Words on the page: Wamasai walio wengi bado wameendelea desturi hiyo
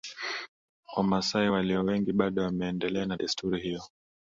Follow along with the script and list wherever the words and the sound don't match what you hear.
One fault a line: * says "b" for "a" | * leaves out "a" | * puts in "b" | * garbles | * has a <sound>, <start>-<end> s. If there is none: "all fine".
* puts in "na"